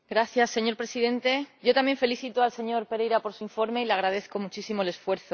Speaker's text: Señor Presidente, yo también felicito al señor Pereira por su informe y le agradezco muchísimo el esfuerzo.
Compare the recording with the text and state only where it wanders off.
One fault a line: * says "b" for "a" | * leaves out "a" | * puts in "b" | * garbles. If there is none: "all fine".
all fine